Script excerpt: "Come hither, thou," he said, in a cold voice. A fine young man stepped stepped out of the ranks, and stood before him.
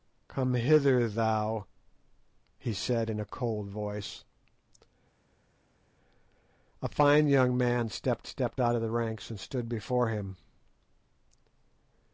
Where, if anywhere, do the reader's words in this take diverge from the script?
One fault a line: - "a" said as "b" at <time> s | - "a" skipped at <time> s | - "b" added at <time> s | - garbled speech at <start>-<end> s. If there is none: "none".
none